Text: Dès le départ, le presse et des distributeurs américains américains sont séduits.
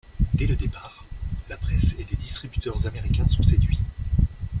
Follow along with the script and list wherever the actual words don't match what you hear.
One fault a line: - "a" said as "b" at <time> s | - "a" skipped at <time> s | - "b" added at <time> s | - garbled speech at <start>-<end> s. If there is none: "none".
- "le" said as "la" at 1.5 s
- "américains" skipped at 3.3 s